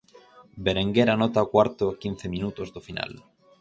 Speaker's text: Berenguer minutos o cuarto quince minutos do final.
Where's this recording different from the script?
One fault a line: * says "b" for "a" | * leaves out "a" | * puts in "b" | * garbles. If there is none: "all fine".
* says "anota" for "minutos"
* puts in "a"